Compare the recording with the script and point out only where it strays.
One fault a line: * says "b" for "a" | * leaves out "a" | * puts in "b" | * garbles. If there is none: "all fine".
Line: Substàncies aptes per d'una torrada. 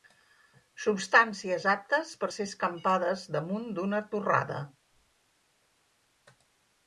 * puts in "ser escampades damunt"